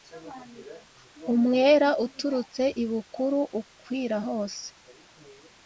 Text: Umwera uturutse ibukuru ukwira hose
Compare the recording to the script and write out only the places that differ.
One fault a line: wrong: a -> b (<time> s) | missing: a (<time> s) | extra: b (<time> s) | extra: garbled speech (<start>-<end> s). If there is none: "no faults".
no faults